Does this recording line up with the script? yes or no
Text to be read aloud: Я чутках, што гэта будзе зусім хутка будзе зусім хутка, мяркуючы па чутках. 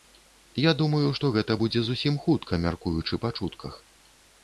no